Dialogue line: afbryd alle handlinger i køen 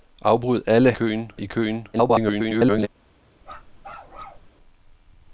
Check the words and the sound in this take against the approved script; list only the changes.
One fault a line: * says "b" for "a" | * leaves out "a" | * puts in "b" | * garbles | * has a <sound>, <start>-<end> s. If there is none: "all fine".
* says "køen" for "handlinger"
* garbles
* has a bark, 3.4-4.5 s